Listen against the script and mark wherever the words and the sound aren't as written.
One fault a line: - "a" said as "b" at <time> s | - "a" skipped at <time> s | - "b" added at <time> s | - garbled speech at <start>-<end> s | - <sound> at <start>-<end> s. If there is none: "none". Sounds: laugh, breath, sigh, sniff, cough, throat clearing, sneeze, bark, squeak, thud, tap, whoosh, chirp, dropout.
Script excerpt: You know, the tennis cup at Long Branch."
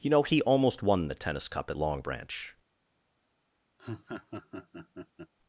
- "he almost won" added at 0.2 s
- laugh at 3.8-5.3 s